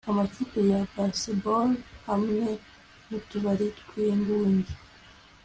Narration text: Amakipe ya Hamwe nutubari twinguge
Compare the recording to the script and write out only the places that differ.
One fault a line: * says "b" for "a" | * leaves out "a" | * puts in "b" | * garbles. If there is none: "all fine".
* puts in "Baseball"